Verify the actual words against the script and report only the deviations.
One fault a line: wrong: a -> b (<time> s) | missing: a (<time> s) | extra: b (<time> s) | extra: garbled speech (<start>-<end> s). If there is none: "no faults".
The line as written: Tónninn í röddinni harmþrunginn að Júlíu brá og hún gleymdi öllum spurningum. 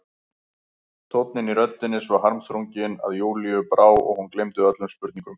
extra: svo (2.0 s)